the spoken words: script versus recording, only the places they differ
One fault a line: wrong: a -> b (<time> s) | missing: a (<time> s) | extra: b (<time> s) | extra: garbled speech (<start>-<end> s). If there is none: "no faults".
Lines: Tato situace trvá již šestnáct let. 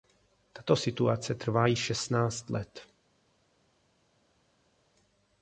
no faults